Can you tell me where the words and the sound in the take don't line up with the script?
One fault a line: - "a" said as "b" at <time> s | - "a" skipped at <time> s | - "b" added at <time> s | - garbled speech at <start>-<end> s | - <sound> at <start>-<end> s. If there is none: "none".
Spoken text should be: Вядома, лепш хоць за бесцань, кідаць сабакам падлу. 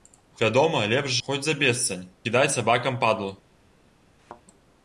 - thud at 4.2-4.4 s